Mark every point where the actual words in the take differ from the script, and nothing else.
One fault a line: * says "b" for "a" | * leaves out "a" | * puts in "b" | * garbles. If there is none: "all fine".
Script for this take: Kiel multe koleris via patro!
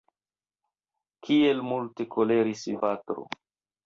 * leaves out "via"